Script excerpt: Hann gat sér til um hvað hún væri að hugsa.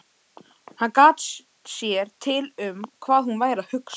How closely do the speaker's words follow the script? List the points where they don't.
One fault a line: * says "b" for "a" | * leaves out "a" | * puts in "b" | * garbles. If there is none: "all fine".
all fine